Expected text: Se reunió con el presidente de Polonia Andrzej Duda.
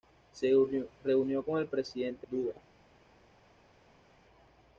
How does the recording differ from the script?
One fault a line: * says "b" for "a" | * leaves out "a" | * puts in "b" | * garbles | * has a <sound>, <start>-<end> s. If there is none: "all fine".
* leaves out "de Polonia Andrzej"